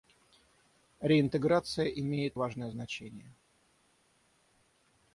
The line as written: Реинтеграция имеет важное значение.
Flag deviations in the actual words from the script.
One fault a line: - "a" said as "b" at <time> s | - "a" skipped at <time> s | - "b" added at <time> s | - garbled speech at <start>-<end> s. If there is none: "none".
none